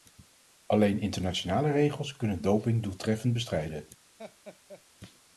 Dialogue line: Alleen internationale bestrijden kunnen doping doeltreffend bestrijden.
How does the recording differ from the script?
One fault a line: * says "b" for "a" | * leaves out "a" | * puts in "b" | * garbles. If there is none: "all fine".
* says "regels" for "bestrijden"